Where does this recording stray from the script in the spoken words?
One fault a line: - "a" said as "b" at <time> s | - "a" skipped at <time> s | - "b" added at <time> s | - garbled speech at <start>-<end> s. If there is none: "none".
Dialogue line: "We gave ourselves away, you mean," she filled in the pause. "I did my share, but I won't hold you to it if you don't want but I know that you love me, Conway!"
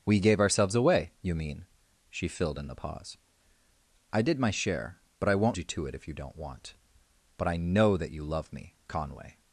- "hold" skipped at 5.6 s